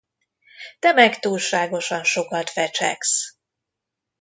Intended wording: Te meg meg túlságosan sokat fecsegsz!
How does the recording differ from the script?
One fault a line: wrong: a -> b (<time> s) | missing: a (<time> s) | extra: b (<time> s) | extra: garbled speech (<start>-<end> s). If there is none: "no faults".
missing: meg (1.2 s)